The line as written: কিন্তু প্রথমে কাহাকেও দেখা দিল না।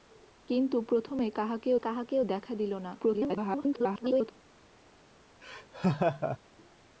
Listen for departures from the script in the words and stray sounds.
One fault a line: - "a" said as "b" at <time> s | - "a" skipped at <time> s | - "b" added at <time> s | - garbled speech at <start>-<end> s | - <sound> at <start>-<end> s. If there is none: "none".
- "কাহাকেও" added at 1.8 s
- garbled speech at 3.0-4.3 s
- laugh at 5.4-6.4 s